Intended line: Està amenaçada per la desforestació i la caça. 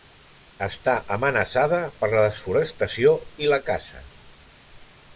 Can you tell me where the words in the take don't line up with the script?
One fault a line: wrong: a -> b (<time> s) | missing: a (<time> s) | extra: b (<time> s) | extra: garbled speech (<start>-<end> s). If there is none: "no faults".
no faults